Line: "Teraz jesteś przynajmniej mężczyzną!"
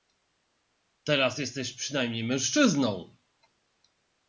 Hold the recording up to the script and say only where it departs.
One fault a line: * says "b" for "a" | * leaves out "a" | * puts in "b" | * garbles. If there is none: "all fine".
all fine